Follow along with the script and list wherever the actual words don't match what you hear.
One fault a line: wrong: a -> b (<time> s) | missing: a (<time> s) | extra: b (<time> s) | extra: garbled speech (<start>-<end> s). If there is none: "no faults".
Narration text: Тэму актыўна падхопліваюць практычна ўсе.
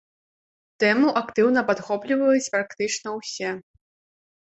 no faults